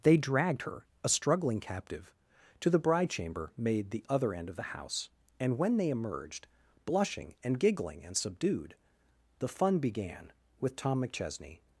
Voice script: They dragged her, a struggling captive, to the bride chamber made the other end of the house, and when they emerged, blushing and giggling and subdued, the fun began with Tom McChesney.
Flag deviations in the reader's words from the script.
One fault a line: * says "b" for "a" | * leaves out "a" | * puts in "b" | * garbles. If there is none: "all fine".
all fine